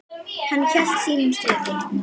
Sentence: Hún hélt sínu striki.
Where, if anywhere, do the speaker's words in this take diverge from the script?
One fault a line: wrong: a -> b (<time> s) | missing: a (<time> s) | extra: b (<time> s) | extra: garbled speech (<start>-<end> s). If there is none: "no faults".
wrong: Hún -> Hann (0.5 s)